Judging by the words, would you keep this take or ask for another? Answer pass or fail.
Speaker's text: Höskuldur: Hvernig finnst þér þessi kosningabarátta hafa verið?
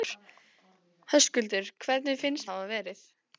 fail